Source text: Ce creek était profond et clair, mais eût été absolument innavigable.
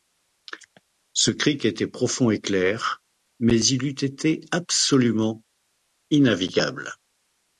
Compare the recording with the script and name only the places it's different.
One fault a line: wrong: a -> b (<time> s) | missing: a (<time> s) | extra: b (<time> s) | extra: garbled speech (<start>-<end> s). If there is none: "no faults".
extra: il (3.6 s)